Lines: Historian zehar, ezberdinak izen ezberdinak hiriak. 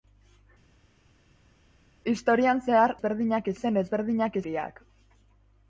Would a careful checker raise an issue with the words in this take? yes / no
no